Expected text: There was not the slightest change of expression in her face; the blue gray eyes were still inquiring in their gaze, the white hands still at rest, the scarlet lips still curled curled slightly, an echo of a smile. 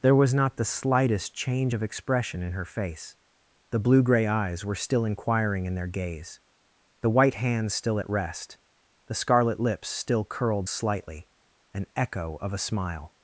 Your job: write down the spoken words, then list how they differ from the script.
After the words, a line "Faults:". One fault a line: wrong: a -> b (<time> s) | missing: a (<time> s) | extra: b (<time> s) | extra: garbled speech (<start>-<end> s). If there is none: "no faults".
There was not the slightest change of expression in her face; the blue gray eyes were still inquiring in their gaze, the white hands still at rest, the scarlet lips still curled slightly, an echo of a smile.
Faults:
missing: curled (10.7 s)